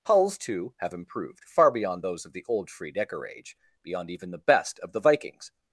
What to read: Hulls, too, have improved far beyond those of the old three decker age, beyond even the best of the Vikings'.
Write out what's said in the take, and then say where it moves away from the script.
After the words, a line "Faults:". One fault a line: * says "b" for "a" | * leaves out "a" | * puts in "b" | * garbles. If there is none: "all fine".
Hulls, too, have improved far beyond those of the old free decker age, beyond even the best of the Vikings'.
Faults:
* says "free" for "three"